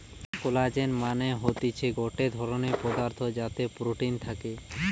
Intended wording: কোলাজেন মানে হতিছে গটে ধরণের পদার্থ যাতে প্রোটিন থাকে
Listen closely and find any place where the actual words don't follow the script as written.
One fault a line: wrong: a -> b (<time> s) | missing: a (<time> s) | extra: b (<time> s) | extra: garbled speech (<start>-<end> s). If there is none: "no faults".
no faults